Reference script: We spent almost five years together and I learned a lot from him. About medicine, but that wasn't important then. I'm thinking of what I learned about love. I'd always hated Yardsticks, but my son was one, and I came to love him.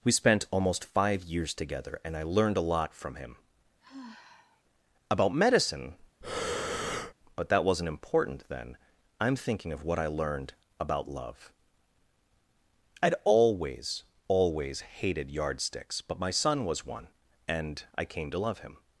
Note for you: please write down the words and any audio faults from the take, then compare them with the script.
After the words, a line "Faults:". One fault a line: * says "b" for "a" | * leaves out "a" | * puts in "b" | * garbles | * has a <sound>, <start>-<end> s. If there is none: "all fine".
We spent almost five years together and I learned a lot from him. About medicine, but that wasn't important then. I'm thinking of what I learned about love. I'd always always hated Yardsticks, but my son was one, and I came to love him.
Faults:
* has a sigh, 3.8-4.6 s
* has a breath, 6.2-7.1 s
* puts in "always"